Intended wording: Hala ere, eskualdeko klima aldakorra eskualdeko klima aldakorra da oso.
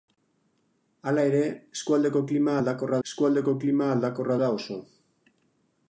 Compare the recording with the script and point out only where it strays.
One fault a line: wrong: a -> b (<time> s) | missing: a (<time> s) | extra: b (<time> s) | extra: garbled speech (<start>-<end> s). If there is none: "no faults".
no faults